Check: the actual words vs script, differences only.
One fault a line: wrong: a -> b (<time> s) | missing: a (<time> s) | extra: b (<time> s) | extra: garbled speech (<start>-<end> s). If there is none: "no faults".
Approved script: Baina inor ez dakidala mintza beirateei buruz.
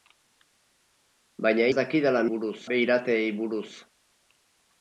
missing: inor (1.7 s)
wrong: mintza -> buruz (2.3 s)